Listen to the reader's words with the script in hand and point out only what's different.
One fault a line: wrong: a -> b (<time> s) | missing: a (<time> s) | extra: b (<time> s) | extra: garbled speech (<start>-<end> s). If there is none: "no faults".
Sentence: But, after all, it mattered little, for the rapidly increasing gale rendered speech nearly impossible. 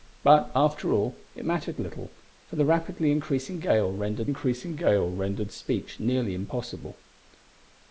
extra: increasing gale rendered (4.2 s)